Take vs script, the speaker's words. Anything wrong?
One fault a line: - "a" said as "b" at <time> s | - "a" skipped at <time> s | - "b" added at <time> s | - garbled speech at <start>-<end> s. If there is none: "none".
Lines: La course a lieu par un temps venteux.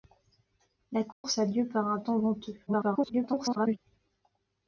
- garbled speech at 2.7-3.8 s